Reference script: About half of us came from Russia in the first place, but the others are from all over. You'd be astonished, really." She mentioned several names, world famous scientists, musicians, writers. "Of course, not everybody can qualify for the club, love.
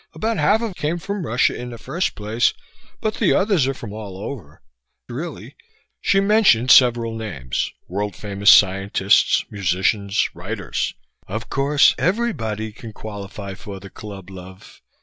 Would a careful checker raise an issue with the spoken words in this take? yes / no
yes